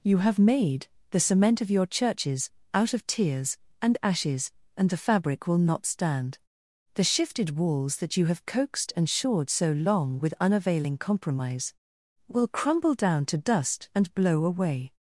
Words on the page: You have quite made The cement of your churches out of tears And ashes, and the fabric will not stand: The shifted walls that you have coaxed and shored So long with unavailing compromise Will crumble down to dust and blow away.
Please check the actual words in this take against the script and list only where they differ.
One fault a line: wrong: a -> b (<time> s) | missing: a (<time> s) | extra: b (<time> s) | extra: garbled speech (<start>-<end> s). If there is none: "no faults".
missing: quite (0.4 s)